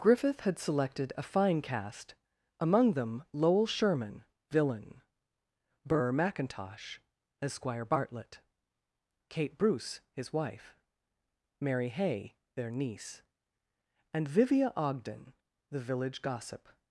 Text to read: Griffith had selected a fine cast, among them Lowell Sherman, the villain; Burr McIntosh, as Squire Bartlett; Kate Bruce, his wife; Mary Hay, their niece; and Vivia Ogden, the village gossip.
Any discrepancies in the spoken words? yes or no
yes